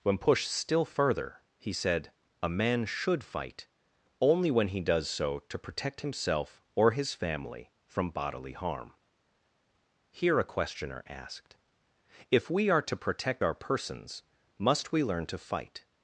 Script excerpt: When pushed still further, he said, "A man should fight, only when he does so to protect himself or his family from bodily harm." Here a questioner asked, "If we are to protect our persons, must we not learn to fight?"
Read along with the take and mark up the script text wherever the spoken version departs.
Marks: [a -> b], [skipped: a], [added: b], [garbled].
When pushed still further, he said, "A man should fight, only when he does so to protect himself or his family from bodily harm." Here a questioner asked, "If we are to protect our persons, must we [skipped: not] learn to fight?"